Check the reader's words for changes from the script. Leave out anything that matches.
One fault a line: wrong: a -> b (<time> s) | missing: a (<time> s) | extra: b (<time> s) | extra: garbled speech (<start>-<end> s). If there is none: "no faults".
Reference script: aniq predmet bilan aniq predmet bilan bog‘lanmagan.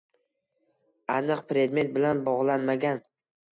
missing: aniq predmet bilan (2.2 s)